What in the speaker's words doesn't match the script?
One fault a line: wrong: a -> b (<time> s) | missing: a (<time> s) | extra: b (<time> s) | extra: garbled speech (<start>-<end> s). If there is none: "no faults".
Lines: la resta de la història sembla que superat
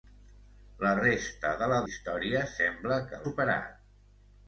no faults